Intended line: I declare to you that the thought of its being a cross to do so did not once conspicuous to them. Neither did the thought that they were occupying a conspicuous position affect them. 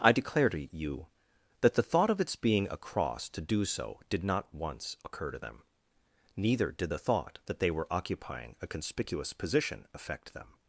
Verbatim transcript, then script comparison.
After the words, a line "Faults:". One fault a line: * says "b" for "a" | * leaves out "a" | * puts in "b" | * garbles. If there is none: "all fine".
I declare to you that the thought of its being a cross to do so did not once occur to them. Neither did the thought that they were occupying a conspicuous position affect them.
Faults:
* says "occur" for "conspicuous"